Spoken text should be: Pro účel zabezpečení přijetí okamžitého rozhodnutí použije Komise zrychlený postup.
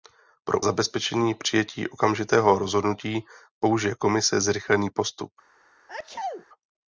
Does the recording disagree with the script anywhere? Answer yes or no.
yes